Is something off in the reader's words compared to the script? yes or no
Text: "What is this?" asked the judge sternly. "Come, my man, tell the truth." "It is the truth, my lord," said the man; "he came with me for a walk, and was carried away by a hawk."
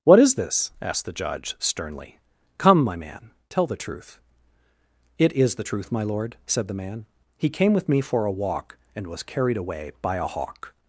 no